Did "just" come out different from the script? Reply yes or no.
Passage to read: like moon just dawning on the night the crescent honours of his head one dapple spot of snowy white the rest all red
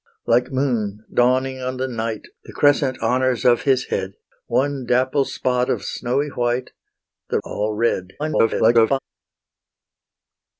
yes